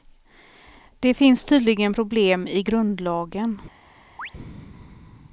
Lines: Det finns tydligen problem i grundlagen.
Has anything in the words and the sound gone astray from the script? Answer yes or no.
yes